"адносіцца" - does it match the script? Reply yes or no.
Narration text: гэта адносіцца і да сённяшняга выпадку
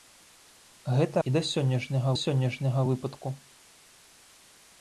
no